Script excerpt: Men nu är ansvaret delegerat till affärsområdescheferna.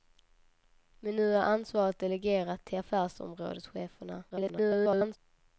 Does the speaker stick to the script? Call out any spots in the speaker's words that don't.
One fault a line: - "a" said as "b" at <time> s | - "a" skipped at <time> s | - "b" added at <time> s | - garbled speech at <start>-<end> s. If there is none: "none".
- garbled speech at 4.3-5.2 s